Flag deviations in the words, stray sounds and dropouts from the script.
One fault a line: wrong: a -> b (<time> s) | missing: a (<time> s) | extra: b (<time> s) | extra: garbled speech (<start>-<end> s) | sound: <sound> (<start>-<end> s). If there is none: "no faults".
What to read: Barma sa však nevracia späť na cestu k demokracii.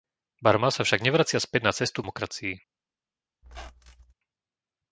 missing: k (2.0 s)
sound: squeak (3.4-4.1 s)